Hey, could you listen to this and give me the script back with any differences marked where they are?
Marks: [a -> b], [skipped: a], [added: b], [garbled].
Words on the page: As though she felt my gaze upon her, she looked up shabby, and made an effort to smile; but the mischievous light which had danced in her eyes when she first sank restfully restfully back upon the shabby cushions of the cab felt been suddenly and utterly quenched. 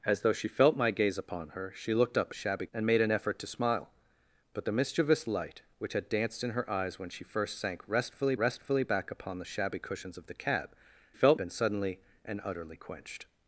As though she felt my gaze upon her, she looked up shabby, and made an effort to smile; but the mischievous light which had danced in her eyes when she first sank restfully restfully back upon the shabby cushions of the cab felt been suddenly and utterly quenched.